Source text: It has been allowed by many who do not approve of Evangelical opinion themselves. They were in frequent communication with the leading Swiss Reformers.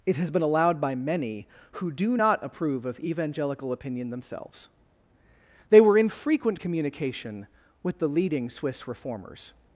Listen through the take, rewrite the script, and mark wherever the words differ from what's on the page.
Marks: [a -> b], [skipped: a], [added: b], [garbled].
It has been allowed by many who do not approve of Evangelical opinion themselves. They were in frequent communication with the leading Swiss Reformers.